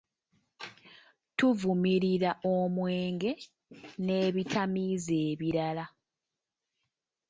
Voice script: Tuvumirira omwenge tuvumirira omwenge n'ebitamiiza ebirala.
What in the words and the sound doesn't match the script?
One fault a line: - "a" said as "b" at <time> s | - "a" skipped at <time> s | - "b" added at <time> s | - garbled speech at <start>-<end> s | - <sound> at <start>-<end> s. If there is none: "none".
- "tuvumirira omwenge" skipped at 3.3 s